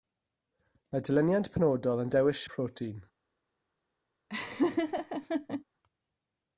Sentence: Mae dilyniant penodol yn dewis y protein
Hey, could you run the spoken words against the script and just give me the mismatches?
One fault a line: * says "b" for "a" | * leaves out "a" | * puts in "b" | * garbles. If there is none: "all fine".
all fine